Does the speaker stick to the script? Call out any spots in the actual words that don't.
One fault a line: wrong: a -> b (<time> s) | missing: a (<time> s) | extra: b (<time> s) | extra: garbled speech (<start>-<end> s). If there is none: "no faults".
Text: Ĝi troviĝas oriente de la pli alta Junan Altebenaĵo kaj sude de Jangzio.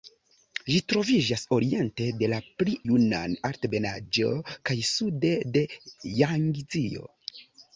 missing: alta (2.7 s)